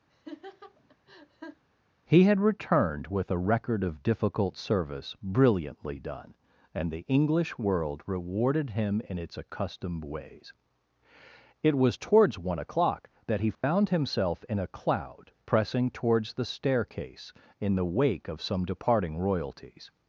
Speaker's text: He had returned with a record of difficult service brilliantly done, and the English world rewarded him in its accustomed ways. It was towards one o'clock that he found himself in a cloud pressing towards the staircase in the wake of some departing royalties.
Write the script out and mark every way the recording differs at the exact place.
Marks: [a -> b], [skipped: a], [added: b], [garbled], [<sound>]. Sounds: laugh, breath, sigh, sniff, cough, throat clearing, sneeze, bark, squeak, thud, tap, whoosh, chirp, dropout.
[laugh] He had returned with a record of difficult service brilliantly done, and the English world rewarded him in its accustomed ways. It was towards one o'clock that he found [dropout] himself in a cloud pressing towards the staircase in the wake of some departing royalties.